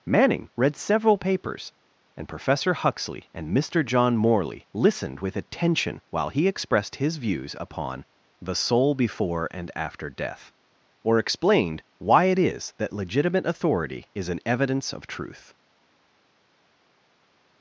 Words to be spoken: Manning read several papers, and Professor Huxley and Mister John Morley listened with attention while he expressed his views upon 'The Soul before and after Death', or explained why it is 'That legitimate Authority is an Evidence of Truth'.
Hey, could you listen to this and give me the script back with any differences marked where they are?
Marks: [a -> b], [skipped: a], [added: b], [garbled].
Manning read several papers, and Professor Huxley and Mister John Morley listened with attention while he expressed his views upon 'The Soul before and after Death', or explained why it is 'That legitimate Authority is an Evidence of Truth'.